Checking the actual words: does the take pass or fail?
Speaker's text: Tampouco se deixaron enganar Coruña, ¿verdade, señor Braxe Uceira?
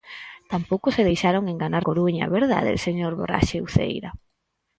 pass